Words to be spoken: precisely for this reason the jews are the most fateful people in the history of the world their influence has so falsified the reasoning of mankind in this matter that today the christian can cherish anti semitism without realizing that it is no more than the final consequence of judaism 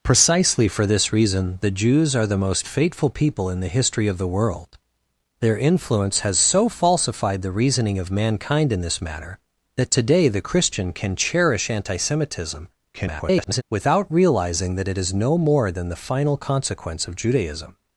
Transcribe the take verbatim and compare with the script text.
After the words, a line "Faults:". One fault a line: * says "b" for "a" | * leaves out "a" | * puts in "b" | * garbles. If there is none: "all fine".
precisely for this reason the jews are the most fateful people in the history of the world their influence has so falsified the reasoning of mankind in this matter that today the christian can cherish anti semitism [garbled] without realizing that it is no more than the final consequence of judaism
Faults:
* garbles